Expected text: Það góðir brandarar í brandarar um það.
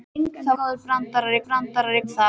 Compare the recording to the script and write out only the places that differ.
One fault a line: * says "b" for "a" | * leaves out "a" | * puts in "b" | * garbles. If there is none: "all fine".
all fine